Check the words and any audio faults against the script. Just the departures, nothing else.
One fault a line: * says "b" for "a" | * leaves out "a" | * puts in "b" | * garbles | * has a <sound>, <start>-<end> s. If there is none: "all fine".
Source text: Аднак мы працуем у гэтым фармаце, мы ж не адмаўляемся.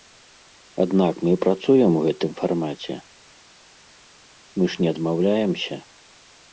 all fine